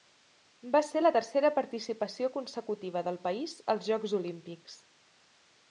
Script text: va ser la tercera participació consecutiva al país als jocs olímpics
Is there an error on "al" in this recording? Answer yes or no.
yes